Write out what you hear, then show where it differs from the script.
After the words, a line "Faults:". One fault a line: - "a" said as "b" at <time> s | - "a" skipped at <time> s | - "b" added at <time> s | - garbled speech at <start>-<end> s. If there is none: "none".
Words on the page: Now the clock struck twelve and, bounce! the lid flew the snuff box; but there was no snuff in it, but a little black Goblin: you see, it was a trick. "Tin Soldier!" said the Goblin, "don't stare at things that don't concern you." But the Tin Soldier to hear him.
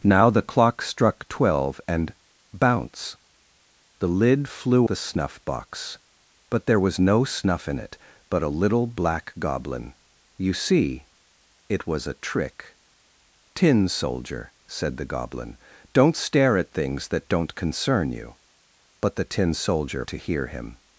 Now the clock struck twelve and, bounce! the lid flew the snuff box; but there was no snuff in it, but a little black Goblin: you see, it was a trick. "Tin Soldier!" said the Goblin, "don't stare at things that don't concern you." But the Tin Soldier to hear him.
Faults:
none